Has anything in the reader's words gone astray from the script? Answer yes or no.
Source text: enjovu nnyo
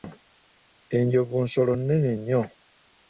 yes